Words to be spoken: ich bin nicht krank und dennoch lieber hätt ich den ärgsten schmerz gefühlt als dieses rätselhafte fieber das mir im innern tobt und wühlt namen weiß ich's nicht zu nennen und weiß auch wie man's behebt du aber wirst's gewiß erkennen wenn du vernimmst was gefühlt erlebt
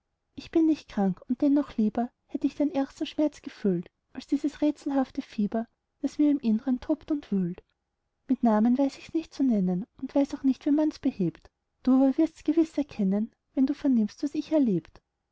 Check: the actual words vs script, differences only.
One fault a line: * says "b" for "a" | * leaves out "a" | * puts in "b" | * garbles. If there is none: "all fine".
* puts in "mit"
* puts in "nicht"
* says "ich" for "gefühlt"